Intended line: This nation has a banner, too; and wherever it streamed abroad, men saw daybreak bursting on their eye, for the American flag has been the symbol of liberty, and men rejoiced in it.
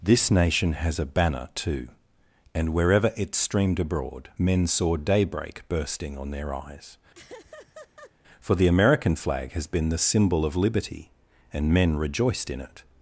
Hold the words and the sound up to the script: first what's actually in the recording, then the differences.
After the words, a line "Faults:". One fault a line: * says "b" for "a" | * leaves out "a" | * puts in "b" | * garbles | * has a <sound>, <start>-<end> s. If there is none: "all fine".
This nation has a banner, too; and wherever it streamed abroad, men saw daybreak bursting on their eyes, for the American flag has been the symbol of liberty, and men rejoiced in it.
Faults:
* says "eyes" for "eye"
* has a laugh, 7.1-8.1 s